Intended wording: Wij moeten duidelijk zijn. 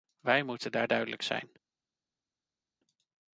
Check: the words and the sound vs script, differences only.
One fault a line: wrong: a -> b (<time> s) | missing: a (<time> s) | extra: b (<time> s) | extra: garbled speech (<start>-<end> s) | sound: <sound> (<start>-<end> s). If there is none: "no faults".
extra: daar (0.7 s)